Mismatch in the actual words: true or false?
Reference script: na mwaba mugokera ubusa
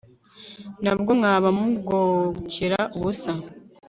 true